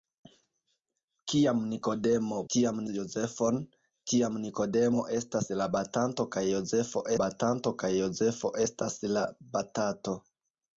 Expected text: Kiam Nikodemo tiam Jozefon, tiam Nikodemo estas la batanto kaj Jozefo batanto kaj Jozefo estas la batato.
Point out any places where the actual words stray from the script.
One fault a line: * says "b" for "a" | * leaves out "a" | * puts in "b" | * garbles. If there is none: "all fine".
all fine